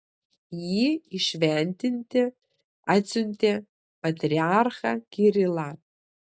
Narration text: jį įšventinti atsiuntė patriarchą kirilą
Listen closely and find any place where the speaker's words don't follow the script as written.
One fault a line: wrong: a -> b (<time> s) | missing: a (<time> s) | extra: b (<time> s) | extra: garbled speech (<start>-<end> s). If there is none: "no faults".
no faults